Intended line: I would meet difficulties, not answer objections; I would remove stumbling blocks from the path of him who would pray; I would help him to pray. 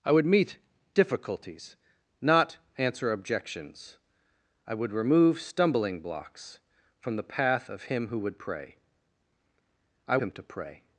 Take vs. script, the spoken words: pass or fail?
fail